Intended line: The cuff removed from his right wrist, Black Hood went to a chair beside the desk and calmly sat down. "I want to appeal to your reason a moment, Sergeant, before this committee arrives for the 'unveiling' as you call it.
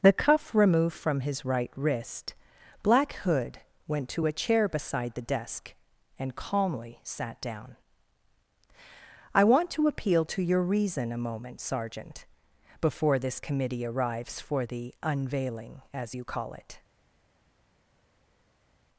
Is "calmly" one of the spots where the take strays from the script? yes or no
no